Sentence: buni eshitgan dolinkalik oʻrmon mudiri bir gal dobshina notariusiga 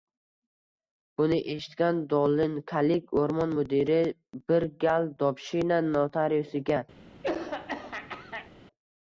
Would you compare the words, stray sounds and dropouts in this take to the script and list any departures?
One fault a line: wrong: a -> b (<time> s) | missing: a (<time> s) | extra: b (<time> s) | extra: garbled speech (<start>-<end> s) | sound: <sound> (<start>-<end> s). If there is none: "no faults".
sound: throat clearing (7.2-8.5 s)